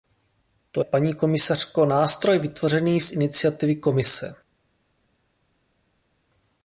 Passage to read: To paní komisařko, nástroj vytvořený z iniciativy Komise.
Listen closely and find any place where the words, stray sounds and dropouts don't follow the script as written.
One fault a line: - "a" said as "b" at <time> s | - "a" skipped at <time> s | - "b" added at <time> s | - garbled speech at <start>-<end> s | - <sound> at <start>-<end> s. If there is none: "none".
none